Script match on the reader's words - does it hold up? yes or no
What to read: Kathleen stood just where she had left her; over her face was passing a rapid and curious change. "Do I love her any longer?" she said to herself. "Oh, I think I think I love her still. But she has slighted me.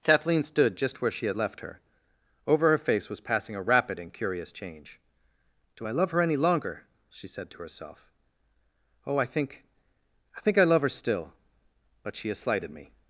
yes